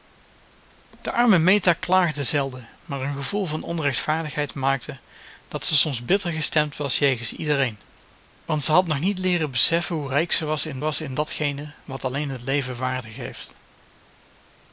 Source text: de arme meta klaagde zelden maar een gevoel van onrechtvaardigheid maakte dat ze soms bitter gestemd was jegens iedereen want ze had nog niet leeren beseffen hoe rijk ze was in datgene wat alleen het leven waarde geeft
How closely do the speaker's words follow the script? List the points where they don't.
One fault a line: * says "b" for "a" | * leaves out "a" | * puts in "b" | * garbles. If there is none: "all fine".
* puts in "was in"